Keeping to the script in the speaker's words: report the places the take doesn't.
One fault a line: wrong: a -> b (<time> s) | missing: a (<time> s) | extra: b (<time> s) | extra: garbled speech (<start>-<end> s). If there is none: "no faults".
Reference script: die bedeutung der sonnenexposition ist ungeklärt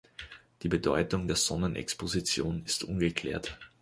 no faults